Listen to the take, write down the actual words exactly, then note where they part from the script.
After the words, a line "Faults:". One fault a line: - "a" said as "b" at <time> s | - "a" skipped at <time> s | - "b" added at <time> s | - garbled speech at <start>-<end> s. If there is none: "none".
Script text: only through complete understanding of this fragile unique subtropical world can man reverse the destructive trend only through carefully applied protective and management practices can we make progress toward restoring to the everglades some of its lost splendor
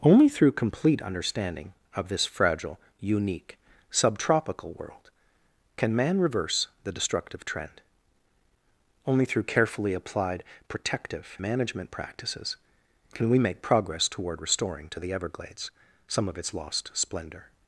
only through complete understanding of this fragile unique subtropical world can man reverse the destructive trend only through carefully applied protective management practices can we make progress toward restoring to the everglades some of its lost splendor
Faults:
- "and" skipped at 11.4 s